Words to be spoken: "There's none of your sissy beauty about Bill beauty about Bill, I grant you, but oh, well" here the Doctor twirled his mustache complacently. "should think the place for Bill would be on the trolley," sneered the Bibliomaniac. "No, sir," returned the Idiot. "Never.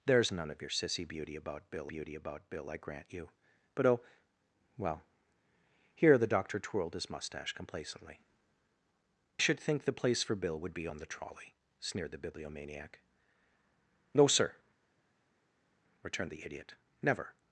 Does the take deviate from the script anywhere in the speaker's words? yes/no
no